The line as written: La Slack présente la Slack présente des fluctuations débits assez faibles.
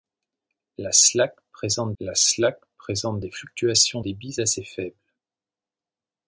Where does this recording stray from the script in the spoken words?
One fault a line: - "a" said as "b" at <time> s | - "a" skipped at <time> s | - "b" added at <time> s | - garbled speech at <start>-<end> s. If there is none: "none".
none